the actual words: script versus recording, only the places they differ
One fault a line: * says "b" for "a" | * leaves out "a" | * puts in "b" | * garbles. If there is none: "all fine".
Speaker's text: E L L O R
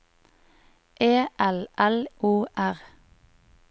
all fine